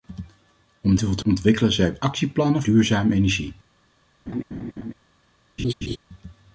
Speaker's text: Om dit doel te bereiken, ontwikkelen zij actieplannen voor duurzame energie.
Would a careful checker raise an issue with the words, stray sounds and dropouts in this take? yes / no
yes